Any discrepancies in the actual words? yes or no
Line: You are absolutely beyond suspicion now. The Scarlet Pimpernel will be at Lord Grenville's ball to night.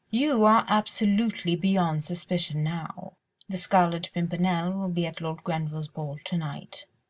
no